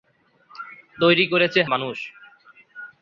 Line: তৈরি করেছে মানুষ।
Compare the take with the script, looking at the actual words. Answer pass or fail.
pass